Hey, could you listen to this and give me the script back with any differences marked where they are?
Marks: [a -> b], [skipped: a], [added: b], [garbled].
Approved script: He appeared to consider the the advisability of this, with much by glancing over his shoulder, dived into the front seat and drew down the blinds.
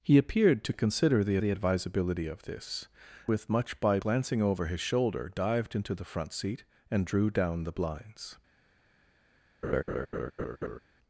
He appeared to consider the the advisability of this, with much by glancing over his shoulder, dived into the front seat and drew down the blinds.